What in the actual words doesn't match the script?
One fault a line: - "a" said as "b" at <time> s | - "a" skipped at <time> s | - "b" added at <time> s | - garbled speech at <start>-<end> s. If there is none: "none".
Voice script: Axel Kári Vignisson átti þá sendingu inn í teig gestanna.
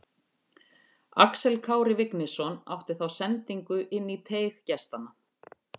none